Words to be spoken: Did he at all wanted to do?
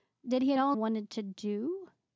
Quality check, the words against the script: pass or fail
pass